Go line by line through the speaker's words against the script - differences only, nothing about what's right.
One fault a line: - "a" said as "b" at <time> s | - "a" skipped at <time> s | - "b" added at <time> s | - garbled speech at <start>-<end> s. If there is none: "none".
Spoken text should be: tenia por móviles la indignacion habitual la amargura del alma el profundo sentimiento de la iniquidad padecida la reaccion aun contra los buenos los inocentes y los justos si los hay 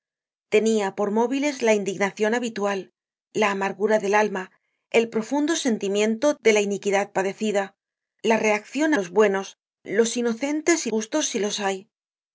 - "aun contra" skipped at 8.9 s
- "los" skipped at 10.9 s